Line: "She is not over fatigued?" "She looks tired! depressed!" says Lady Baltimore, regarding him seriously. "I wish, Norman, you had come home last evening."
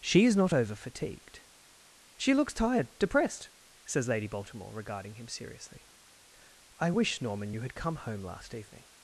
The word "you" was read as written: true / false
true